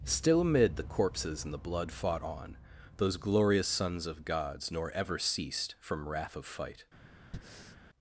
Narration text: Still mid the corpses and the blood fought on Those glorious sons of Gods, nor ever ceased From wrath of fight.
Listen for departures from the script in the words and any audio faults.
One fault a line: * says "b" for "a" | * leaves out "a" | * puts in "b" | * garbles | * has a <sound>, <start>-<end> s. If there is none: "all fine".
* says "amid" for "mid"
* has a breath, 7.3-7.8 s